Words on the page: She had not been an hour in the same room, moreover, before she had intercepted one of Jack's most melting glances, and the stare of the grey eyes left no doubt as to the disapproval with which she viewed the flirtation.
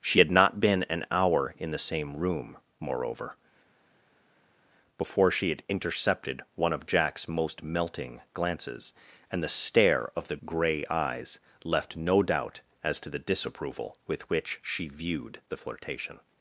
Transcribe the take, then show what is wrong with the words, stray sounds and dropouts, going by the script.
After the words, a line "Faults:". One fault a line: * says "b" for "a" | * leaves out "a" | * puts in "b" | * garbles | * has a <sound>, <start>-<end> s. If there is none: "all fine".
She had not been an hour in the same room, moreover, before she had intercepted one of Jack's most melting glances, and the stare of the grey eyes left no doubt as to the disapproval with which she viewed the flirtation.
Faults:
all fine